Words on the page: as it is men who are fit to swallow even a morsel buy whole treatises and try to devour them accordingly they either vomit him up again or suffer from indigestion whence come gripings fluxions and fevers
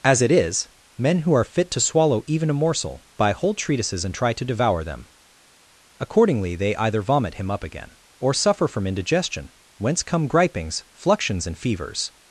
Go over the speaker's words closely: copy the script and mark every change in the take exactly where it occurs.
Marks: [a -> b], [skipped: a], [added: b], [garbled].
as it is men who are fit to swallow even a morsel buy whole treatises and try to devour them accordingly they either vomit him up again or suffer from indigestion whence come gripings fluxions and fevers